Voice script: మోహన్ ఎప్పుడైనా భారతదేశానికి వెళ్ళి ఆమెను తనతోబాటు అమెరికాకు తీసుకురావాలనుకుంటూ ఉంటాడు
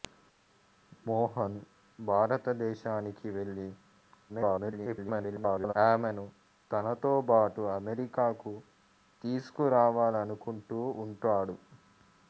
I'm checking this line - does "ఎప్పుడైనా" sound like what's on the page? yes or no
no